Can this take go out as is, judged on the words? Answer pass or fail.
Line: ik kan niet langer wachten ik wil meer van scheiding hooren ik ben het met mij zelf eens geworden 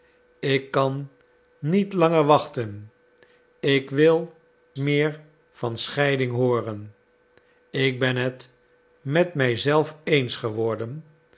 pass